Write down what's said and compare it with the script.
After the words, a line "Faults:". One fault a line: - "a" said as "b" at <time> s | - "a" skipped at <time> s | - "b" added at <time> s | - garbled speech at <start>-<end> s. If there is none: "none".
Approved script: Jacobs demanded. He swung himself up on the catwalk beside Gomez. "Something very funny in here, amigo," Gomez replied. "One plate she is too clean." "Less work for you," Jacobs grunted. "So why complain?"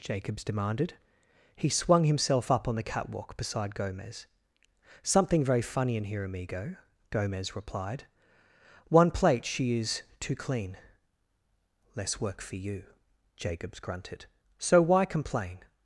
Jacobs demanded. He swung himself up on the catwalk beside Gomez. "Something very funny in here, amigo," Gomez replied. "One plate she is too clean." "Less work for you," Jacobs grunted. "So why complain?"
Faults:
none